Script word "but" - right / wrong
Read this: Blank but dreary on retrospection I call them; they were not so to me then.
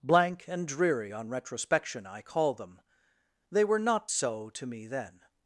wrong